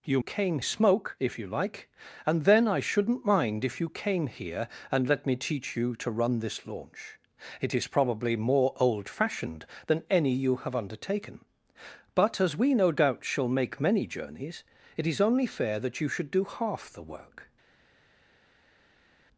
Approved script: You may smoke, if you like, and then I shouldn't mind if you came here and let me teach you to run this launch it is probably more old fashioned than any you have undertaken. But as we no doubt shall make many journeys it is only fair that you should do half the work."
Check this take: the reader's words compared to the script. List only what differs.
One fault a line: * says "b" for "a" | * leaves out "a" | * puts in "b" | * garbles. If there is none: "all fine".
* says "came" for "may"